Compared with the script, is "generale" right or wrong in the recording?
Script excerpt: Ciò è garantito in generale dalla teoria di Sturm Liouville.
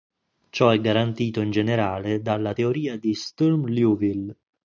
right